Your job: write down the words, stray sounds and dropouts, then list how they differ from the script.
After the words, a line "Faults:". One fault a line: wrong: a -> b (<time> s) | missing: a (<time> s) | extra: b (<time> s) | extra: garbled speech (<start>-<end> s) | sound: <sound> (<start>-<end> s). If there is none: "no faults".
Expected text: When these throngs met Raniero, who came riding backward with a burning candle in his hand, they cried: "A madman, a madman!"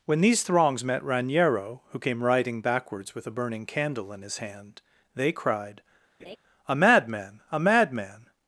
When these throngs met Raniero, who came riding backwards with a burning candle in his hand, they cried: "A madman, a madman!"
Faults:
wrong: backward -> backwards (2.6 s)
sound: laugh (6.2-6.4 s)